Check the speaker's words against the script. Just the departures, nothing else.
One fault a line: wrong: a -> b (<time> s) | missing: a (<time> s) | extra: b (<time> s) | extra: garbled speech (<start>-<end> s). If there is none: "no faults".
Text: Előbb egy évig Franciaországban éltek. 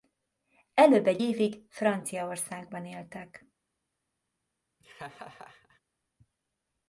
no faults